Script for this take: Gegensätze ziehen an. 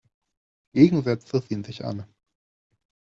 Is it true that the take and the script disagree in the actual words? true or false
true